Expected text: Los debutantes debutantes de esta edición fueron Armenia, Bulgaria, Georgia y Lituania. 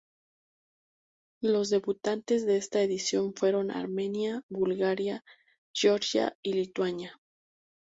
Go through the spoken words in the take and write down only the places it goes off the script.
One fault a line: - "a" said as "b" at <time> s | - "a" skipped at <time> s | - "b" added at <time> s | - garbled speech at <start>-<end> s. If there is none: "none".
- "debutantes" skipped at 2.5 s